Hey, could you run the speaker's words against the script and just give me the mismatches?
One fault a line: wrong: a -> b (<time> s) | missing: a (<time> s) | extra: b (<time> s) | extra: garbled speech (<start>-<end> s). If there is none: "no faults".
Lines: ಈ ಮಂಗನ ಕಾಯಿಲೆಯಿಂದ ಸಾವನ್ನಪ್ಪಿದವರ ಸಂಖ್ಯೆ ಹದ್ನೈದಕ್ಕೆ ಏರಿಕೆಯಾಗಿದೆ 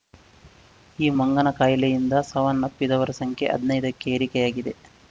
no faults